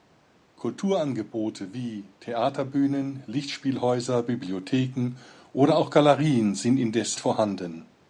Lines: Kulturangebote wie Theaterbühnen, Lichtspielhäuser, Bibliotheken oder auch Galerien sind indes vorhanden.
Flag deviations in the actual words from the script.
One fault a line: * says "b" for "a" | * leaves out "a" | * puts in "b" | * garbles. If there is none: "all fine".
all fine